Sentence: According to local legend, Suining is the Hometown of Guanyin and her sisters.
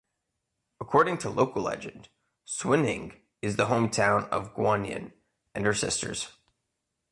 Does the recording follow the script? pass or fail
pass